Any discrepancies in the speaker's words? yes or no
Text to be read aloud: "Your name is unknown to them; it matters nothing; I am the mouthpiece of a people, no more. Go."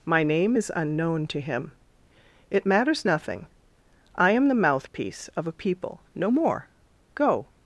yes